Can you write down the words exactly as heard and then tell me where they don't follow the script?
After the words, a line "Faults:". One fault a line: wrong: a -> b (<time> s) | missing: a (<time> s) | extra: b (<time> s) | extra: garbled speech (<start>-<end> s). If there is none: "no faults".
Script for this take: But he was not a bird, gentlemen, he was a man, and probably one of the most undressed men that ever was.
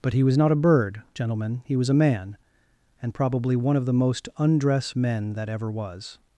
But he was not a bird, gentlemen, he was a man, and probably one of the most undress men that ever was.
Faults:
wrong: undressed -> undress (4.4 s)